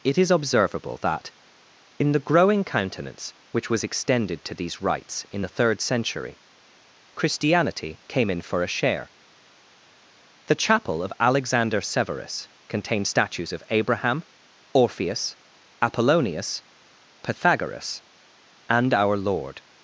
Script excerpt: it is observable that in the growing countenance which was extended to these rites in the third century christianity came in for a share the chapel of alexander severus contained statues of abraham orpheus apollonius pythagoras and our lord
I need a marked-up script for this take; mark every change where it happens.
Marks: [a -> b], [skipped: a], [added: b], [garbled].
it is observable that in the growing countenance which was extended to these rites in the third century christianity came in for a share the chapel of alexander severus contained statues of abraham orpheus apollonius pythagoras and our lord